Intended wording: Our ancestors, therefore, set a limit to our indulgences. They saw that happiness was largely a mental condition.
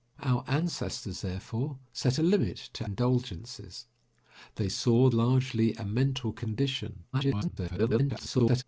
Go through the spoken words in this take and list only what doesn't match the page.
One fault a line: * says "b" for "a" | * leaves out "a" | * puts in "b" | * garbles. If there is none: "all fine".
* leaves out "our"
* leaves out "that happiness was"
* garbles